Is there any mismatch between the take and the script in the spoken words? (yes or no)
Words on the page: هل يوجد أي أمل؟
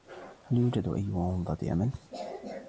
yes